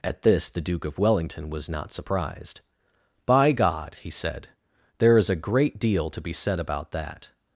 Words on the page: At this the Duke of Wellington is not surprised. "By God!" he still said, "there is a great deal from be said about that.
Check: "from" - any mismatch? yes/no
yes